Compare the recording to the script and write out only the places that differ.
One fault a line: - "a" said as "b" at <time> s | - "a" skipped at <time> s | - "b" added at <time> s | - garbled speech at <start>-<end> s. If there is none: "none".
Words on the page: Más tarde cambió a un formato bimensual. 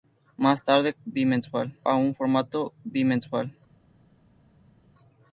- "cambió" said as "bimensual" at 1.0 s